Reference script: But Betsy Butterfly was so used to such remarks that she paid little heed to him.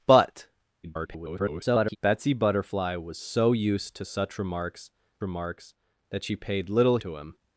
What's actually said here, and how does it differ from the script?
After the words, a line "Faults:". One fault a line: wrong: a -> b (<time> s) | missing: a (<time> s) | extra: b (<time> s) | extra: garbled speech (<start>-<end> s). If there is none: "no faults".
But [garbled] Betsy Butterfly was so used to such remarks remarks that she paid little to him.
Faults:
extra: garbled speech (0.8-2.0 s)
extra: remarks (5.2 s)
missing: heed (7.0 s)